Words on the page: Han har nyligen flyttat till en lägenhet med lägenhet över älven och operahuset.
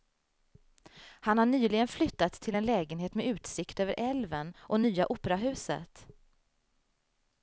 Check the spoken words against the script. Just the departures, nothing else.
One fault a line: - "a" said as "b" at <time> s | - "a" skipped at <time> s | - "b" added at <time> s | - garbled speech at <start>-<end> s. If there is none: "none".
- "lägenhet" said as "utsikt" at 3.3 s
- "nya" added at 4.8 s